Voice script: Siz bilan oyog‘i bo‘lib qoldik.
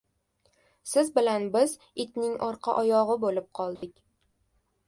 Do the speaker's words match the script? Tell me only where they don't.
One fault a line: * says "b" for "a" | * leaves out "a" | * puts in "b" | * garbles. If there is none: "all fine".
* puts in "biz itning orqa"